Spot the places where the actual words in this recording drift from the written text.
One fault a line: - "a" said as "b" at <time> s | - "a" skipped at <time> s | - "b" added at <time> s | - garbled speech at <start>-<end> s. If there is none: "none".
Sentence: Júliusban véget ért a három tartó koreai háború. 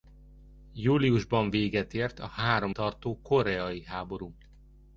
none